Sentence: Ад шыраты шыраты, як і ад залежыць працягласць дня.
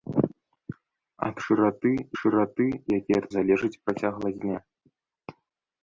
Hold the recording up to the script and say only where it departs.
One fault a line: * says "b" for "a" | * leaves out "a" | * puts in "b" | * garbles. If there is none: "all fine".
all fine